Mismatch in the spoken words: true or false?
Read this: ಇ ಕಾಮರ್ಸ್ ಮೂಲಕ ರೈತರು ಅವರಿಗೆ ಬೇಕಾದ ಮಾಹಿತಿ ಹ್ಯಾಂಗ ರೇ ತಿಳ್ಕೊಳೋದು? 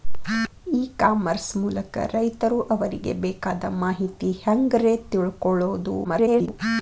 true